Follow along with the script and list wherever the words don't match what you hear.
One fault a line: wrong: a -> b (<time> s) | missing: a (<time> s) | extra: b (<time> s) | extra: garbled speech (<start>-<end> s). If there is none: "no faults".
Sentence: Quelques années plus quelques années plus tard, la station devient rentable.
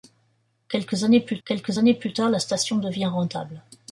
no faults